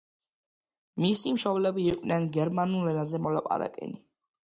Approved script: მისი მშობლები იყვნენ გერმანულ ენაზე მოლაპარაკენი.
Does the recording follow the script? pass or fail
pass